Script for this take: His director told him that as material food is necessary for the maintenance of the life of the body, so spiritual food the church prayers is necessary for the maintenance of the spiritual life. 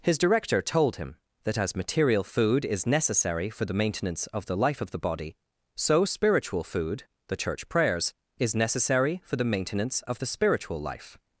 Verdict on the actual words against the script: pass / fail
pass